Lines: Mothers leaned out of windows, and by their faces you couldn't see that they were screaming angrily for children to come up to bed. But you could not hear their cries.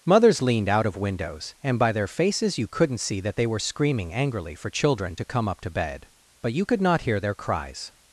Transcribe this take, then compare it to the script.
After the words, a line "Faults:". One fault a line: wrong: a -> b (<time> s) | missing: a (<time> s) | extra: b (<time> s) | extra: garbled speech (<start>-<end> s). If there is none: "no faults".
Mothers leaned out of windows, and by their faces you couldn't see that they were screaming angrily for children to come up to bed. But you could not hear their cries.
Faults:
no faults